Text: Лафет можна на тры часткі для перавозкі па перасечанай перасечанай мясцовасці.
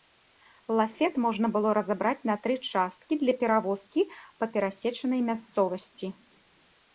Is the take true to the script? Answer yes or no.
no